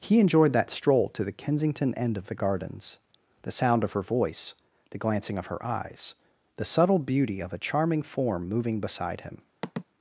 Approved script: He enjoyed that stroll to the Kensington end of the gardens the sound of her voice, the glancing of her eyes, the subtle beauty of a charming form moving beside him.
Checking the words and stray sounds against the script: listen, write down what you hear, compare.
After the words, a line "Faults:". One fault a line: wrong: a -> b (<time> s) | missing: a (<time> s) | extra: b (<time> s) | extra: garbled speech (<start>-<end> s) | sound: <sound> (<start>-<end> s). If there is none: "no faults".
He enjoyed that stroll to the Kensington end of the gardens the sound of her voice, the glancing of her eyes, the subtle beauty of a charming form moving beside him.
Faults:
sound: sigh (9.6-9.8 s)